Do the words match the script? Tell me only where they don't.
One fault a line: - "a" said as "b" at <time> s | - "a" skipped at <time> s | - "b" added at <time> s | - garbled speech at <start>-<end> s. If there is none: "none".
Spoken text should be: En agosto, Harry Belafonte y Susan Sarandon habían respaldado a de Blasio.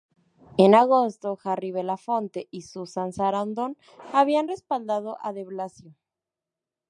none